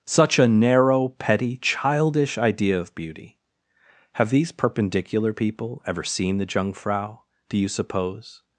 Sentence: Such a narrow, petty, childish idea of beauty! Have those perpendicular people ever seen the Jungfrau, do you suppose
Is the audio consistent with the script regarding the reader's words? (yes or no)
no